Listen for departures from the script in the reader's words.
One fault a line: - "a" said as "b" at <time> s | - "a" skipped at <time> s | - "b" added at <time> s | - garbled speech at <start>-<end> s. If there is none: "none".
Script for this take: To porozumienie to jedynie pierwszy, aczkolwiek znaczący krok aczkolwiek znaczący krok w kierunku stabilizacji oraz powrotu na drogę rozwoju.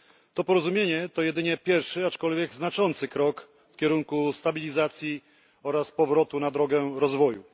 - "aczkolwiek znaczący krok" skipped at 3.5 s